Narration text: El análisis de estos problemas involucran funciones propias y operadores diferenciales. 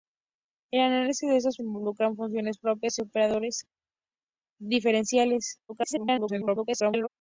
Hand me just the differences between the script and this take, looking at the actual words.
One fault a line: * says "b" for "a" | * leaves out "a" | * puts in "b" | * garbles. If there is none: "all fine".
* leaves out "problemas"
* garbles